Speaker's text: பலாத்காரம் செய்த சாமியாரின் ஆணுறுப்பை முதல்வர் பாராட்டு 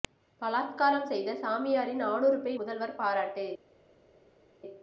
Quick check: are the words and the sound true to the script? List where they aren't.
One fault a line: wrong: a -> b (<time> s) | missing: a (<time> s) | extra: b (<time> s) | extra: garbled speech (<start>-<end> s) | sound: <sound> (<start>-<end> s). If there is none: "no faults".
no faults